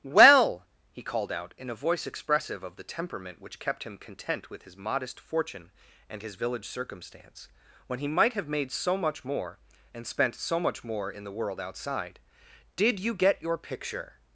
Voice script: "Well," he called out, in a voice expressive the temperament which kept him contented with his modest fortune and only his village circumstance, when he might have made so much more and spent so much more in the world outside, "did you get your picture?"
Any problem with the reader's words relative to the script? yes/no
yes